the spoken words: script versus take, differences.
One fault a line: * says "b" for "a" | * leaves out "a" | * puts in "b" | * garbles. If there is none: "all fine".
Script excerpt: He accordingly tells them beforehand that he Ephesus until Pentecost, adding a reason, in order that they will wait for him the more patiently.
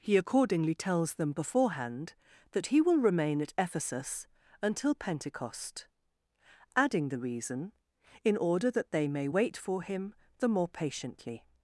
* puts in "will remain at"
* says "the" for "a"
* says "may" for "will"